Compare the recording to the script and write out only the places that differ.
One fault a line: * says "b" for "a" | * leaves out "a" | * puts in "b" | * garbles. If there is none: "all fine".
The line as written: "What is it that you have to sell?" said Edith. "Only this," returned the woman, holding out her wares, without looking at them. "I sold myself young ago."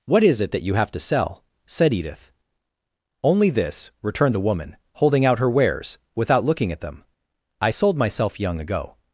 all fine